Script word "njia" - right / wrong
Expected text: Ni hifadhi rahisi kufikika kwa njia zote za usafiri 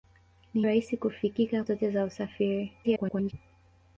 wrong